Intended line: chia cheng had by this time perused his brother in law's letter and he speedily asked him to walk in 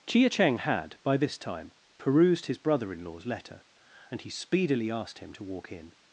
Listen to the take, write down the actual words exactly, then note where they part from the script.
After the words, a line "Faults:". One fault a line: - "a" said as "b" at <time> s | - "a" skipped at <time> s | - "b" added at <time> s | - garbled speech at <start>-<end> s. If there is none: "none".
chia cheng had by this time perused his brother in law's letter and he speedily asked him to walk in
Faults:
none